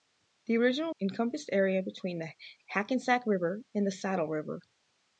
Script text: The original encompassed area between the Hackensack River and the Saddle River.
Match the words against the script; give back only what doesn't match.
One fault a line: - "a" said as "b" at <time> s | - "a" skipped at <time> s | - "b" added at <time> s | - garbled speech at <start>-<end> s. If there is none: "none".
none